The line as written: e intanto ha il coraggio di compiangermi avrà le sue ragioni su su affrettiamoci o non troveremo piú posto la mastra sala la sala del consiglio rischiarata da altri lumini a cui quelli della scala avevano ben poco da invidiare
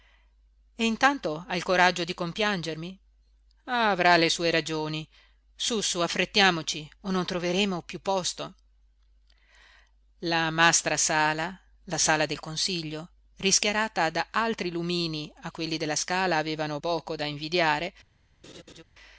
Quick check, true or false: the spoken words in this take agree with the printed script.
false